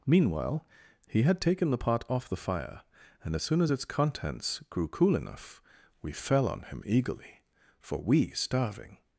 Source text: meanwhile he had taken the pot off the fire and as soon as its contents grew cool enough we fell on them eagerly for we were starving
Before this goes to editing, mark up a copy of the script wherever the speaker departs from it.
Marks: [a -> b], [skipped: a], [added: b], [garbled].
meanwhile he had taken the pot off the fire and as soon as its contents grew cool enough we fell on [them -> him] eagerly for we [skipped: were] starving